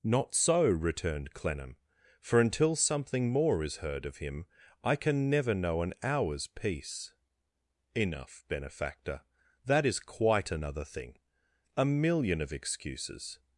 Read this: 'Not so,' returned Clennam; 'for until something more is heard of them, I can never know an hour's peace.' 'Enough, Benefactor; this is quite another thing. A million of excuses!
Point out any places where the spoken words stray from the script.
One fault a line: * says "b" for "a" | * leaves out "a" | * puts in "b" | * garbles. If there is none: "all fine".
* says "him" for "them"
* says "that" for "this"